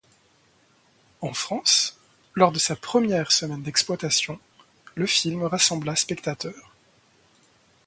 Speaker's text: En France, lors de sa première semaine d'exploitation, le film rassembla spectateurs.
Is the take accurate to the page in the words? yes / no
yes